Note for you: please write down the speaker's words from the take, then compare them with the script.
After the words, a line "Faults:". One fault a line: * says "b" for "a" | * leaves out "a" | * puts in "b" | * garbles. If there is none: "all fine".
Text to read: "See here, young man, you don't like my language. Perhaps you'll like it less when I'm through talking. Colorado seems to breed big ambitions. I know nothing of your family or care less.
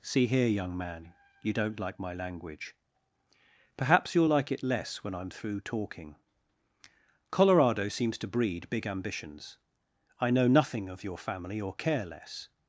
"See here, young man, you don't like my language. Perhaps you'll like it less when I'm through talking. Colorado seems to breed big ambitions. I know nothing of your family or care less.
Faults:
all fine